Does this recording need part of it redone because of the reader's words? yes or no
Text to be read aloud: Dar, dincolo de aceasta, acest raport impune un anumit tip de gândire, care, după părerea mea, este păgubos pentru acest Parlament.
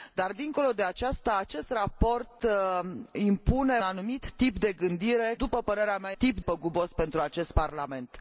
yes